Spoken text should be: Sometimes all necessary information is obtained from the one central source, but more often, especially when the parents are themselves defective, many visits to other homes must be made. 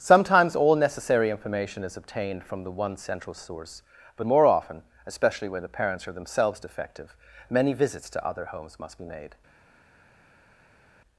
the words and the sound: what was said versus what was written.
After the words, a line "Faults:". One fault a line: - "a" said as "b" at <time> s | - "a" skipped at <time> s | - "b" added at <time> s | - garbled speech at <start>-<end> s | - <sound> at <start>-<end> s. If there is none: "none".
Sometimes all necessary information is obtained from the one central source, but more often, especially when the parents are themselves defective, many visits to other homes must be made.
Faults:
none